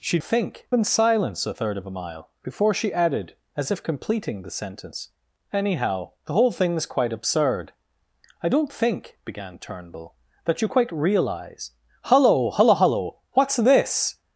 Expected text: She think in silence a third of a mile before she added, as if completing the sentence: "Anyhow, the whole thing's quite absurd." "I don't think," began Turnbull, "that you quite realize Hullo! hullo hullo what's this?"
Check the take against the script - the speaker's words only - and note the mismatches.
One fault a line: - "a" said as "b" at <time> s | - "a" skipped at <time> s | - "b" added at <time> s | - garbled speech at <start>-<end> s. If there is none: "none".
none